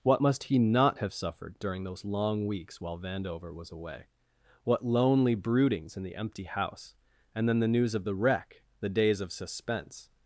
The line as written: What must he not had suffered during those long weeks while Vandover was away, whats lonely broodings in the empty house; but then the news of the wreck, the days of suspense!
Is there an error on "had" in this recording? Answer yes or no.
yes